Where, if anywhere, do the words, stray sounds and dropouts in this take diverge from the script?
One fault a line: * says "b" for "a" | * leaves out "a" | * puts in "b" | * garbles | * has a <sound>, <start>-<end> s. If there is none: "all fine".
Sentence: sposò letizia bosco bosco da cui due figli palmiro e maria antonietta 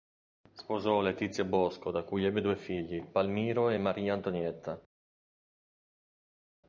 * leaves out "bosco"
* puts in "ebbe"